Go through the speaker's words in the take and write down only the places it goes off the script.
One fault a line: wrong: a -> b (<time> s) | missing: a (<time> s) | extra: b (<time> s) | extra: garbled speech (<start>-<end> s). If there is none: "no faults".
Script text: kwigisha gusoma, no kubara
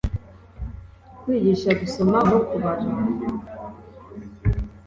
no faults